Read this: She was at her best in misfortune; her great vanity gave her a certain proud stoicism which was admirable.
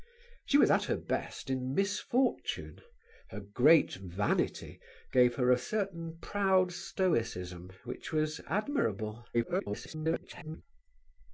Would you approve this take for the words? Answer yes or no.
no